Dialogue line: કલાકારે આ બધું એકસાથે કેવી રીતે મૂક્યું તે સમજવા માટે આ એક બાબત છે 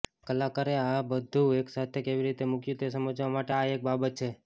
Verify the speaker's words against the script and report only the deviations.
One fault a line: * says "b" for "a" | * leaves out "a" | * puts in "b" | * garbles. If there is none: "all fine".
all fine